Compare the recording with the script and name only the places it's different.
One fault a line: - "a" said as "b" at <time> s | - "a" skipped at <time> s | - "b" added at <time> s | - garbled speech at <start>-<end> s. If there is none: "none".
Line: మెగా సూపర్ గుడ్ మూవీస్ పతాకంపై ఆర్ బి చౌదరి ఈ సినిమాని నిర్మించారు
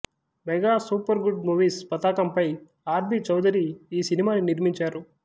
none